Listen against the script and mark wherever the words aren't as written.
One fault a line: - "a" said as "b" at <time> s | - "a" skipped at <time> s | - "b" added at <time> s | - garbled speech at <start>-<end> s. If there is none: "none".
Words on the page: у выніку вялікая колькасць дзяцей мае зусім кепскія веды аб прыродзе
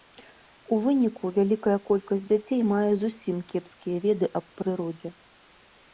none